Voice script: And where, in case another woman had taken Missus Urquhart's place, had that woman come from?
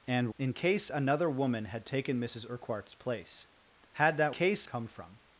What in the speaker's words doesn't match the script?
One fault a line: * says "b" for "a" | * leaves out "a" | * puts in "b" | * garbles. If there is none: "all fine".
* leaves out "where"
* says "case" for "woman"